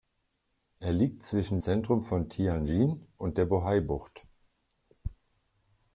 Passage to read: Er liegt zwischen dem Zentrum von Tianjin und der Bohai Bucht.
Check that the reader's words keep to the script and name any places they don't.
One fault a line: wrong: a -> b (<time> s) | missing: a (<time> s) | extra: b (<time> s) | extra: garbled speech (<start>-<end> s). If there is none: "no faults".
missing: dem (1.6 s)